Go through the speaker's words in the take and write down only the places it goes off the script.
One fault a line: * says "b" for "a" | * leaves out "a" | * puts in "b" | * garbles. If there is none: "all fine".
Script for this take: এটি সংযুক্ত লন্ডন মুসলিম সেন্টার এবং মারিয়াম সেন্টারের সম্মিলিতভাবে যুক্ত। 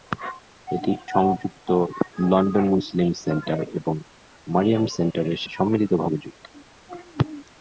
all fine